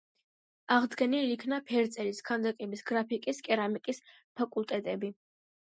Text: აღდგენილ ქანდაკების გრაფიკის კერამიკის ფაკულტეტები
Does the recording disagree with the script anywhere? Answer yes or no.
yes